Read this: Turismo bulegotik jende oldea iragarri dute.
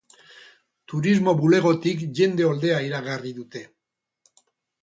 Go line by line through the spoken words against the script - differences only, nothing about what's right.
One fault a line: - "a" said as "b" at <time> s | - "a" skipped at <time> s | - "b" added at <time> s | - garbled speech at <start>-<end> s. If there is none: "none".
none